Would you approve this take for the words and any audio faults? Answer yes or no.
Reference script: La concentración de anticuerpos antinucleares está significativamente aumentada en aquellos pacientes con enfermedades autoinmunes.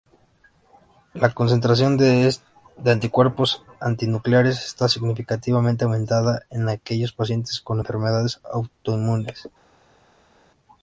yes